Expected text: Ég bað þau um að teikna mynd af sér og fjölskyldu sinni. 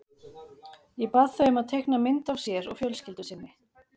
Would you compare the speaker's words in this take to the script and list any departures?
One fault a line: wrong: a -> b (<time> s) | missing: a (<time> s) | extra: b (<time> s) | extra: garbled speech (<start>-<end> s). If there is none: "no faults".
no faults